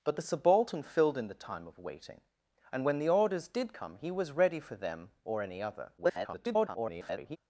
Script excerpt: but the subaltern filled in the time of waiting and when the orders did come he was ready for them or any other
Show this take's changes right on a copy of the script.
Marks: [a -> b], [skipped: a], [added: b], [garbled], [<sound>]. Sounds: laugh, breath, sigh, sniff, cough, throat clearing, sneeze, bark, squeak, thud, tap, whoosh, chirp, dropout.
but the subaltern filled in the time of waiting and when the orders did come he was ready for them or any other [garbled]